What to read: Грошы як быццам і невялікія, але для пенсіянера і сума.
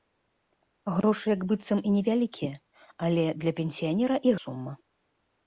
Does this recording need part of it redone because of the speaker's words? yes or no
no